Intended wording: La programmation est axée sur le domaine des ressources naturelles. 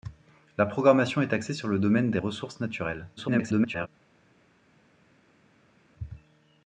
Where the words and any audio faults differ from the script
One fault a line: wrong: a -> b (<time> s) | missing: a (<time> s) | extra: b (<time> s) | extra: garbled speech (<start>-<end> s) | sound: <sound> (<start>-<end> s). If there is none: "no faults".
extra: garbled speech (3.2-3.9 s)